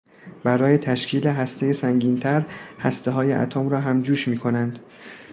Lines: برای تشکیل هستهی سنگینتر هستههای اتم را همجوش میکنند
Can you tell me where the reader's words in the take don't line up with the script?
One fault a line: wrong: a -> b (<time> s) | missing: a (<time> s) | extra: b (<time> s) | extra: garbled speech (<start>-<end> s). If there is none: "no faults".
no faults